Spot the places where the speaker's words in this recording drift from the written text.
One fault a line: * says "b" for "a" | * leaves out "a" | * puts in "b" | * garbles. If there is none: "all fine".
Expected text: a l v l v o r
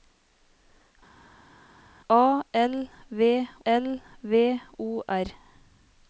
all fine